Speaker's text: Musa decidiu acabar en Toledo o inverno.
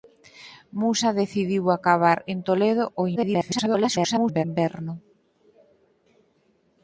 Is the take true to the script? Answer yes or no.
no